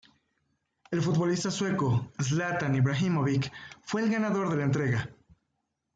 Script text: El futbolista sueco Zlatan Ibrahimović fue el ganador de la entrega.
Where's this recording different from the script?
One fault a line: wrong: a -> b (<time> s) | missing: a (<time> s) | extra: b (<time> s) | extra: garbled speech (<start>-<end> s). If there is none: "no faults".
no faults